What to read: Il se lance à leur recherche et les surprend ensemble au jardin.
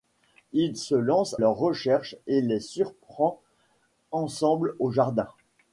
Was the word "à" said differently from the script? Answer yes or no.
yes